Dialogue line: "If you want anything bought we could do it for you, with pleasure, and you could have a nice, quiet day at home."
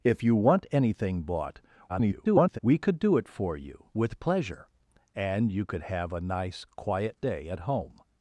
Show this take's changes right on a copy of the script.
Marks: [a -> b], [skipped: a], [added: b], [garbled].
"If you want anything bought [garbled] we could do it for you, with pleasure, and you could have a nice, quiet day at home."